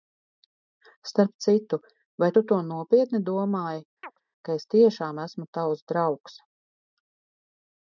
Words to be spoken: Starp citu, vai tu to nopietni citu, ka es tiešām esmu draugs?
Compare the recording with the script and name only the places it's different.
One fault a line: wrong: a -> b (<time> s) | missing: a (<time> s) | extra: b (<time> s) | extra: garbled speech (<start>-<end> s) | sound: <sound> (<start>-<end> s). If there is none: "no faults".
wrong: citu -> domāji (3.3 s)
sound: chirp (4.0-4.2 s)
extra: tavs (5.6 s)